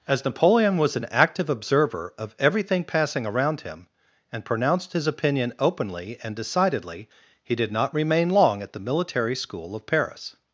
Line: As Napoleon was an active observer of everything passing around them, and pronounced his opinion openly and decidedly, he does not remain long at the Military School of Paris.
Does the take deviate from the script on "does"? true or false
true